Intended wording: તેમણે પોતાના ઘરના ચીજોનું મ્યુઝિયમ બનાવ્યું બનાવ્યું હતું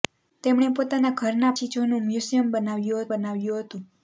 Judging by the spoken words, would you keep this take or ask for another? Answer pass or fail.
pass